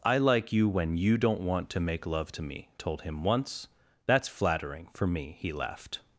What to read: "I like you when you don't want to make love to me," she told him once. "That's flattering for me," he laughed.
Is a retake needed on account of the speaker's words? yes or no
yes